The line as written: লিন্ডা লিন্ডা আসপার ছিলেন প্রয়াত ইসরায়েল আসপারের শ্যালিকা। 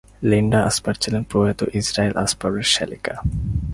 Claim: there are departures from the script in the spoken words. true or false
true